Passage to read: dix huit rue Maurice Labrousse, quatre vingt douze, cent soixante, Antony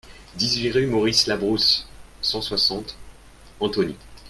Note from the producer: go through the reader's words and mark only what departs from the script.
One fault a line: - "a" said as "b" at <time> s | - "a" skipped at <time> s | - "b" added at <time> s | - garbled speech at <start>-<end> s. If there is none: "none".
- "quatre vingt douze" skipped at 1.9 s